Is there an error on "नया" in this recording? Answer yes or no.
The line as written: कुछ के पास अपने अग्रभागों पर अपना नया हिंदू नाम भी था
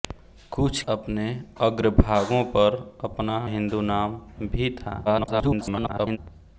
yes